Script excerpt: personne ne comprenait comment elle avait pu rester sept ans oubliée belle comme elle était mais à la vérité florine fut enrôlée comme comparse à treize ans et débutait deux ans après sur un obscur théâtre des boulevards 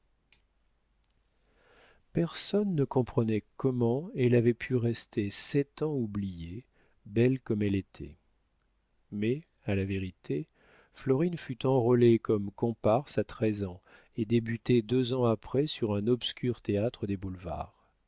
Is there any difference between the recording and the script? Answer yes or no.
no